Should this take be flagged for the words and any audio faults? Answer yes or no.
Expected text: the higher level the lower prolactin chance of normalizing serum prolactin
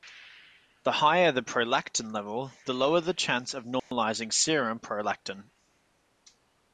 yes